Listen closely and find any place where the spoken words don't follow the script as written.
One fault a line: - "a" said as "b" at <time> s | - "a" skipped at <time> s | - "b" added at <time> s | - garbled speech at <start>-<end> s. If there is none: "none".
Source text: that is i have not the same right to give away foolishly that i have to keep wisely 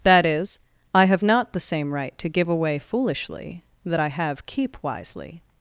- "to" skipped at 4.4 s